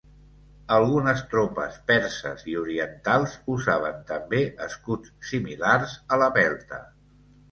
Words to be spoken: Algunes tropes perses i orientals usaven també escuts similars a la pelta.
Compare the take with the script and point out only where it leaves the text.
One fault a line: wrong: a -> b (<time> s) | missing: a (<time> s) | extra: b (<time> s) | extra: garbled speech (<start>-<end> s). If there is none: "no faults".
no faults